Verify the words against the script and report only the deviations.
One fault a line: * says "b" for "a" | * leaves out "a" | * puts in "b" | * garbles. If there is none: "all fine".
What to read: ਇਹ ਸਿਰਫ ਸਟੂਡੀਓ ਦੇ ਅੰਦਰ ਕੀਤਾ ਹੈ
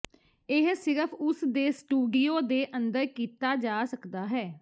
* puts in "ਉਸ ਦੇ"
* puts in "ਜਾ ਸਕਦਾ"